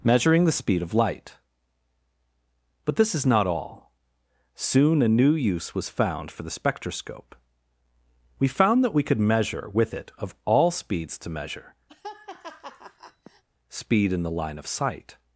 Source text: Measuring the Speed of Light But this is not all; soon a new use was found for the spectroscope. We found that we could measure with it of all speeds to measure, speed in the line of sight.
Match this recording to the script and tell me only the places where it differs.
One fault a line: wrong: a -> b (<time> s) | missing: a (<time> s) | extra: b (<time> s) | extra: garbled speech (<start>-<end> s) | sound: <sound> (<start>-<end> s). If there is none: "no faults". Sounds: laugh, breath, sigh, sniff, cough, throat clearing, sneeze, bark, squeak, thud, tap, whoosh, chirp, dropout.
sound: laugh (11.9-13.4 s)